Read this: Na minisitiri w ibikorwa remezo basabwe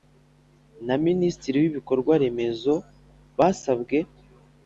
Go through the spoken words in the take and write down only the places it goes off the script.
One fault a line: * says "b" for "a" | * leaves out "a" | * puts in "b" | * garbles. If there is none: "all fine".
all fine